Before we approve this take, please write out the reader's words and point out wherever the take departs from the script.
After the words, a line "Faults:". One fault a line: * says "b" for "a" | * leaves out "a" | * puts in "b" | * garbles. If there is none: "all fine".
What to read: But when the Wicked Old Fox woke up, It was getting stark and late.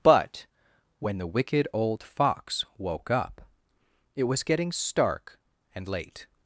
But when the Wicked Old Fox woke up, It was getting stark and late.
Faults:
all fine